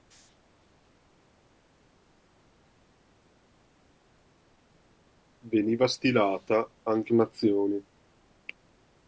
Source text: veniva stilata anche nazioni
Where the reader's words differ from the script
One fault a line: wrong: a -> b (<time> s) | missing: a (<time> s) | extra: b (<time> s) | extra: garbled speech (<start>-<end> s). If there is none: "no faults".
no faults